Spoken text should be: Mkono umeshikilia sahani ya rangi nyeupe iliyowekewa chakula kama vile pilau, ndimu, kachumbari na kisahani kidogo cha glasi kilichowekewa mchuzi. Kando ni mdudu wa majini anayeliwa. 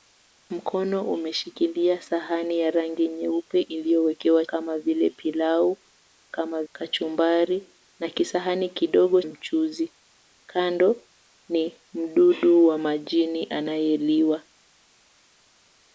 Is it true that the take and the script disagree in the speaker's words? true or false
true